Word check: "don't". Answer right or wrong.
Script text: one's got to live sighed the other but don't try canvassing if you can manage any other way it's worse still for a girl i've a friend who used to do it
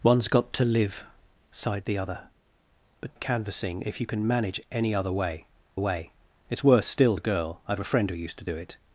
wrong